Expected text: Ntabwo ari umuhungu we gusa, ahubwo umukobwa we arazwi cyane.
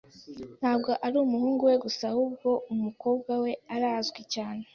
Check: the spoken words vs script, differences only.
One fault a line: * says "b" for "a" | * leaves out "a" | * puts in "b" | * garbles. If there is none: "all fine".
all fine